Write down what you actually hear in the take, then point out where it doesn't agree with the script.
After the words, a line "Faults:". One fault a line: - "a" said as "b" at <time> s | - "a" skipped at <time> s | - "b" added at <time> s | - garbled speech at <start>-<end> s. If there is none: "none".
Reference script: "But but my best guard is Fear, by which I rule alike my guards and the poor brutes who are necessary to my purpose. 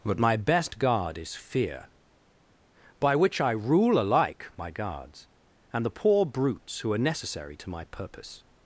"But my best guard is Fear, by which I rule alike my guards and the poor brutes who are necessary to my purpose.
Faults:
- "but" skipped at 0.2 s